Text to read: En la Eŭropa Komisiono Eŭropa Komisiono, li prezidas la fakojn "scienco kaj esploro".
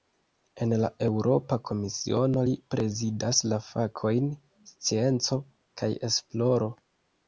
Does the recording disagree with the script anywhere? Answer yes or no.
yes